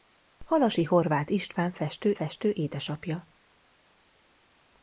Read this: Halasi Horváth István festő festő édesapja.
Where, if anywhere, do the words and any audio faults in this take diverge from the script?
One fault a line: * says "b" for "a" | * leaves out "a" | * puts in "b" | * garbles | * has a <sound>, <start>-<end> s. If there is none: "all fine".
all fine